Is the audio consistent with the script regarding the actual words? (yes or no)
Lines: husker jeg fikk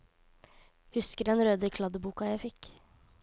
no